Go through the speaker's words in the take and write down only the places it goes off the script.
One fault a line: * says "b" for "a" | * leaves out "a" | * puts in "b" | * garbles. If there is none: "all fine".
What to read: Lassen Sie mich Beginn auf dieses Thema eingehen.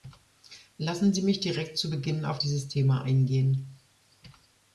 * puts in "direkt zu"